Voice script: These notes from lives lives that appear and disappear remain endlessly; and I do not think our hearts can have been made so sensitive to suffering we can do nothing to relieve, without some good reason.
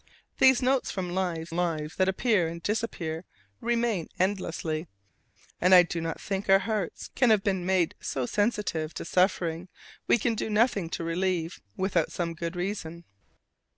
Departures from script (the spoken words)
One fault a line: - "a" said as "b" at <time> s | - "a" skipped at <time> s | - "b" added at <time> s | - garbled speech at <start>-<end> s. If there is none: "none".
none